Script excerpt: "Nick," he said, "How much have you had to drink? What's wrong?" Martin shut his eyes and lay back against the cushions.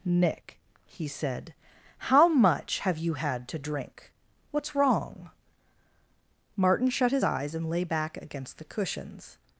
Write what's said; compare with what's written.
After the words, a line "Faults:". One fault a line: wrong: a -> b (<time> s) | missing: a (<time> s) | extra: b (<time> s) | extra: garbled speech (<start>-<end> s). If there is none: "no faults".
"Nick," he said, "How much have you had to drink? What's wrong?" Martin shut his eyes and lay back against the cushions.
Faults:
no faults